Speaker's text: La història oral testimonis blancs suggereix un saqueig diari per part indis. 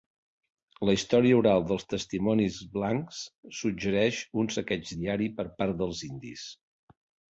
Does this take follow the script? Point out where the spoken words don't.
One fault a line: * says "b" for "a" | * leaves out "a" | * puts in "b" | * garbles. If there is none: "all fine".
* puts in "dels"
* puts in "dels"